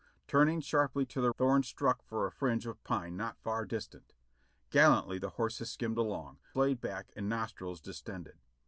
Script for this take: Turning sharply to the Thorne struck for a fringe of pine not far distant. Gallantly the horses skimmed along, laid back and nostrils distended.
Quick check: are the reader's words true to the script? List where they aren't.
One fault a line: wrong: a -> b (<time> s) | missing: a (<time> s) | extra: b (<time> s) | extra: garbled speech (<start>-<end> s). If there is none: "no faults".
no faults